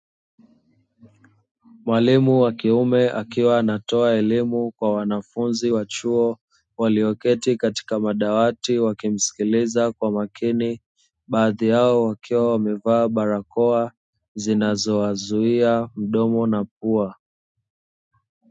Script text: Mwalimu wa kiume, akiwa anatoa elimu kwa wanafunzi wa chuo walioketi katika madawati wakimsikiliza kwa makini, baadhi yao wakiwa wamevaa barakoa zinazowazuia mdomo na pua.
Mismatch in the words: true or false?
false